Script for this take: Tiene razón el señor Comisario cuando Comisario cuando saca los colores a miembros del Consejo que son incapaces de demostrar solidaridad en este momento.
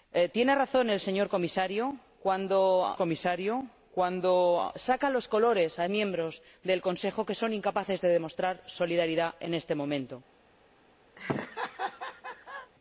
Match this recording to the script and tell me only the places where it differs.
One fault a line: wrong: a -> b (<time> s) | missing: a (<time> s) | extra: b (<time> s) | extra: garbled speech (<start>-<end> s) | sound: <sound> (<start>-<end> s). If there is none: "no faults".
sound: laugh (11.2-12.7 s)